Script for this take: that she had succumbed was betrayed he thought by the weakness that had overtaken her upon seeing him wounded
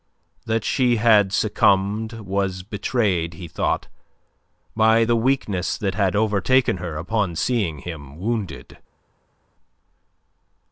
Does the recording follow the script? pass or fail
pass